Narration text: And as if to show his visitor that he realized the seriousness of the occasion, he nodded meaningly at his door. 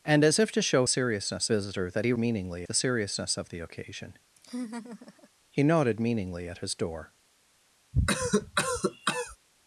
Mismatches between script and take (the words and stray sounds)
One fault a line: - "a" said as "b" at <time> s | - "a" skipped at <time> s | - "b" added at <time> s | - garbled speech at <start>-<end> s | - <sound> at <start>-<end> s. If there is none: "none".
- "his" said as "seriousness" at 0.9 s
- "realized" said as "meaningly" at 2.2 s
- laugh at 4.4-5.3 s
- cough at 7.9-9.4 s